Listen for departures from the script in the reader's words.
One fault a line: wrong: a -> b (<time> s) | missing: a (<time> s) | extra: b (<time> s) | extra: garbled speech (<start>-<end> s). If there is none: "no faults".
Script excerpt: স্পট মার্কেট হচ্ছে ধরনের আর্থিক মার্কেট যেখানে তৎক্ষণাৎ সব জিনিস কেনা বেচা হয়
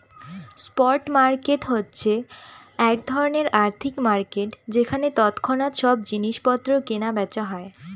extra: এক (2.8 s)
extra: পত্র (6.5 s)